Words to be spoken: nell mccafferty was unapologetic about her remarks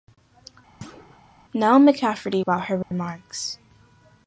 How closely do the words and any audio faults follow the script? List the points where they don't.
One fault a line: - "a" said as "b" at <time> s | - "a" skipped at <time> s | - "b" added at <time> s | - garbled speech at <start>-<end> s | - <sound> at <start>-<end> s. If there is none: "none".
- thud at 0.8-1.2 s
- "was unapologetic" skipped at 2.4 s
- dropout at 2.8-2.9 s